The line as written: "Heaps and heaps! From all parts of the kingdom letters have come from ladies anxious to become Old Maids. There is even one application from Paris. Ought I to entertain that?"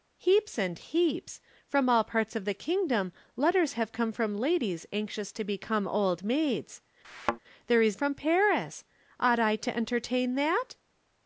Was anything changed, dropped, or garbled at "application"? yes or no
yes